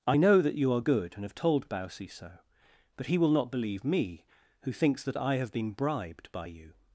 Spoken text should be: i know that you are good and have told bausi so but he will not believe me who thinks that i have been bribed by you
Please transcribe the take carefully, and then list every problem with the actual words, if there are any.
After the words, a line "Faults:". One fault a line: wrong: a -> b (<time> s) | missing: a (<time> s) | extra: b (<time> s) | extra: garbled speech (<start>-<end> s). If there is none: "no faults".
i know that you are good and have told bausi so but he will not believe me who thinks that i have been bribed by you
Faults:
no faults